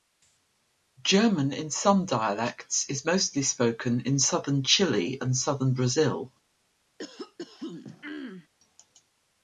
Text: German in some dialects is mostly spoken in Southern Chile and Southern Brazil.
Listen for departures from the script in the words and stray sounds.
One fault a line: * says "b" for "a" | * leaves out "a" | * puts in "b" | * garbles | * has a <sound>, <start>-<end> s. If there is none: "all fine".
* has a throat clearing, 7.0-8.5 s